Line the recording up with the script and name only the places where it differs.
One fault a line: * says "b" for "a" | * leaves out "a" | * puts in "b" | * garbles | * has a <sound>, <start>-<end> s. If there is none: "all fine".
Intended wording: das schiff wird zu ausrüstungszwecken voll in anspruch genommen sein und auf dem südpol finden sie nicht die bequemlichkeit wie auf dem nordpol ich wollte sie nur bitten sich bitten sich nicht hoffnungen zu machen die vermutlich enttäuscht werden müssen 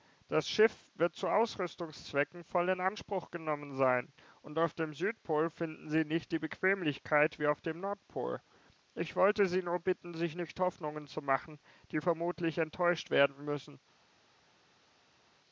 * leaves out "bitten sich"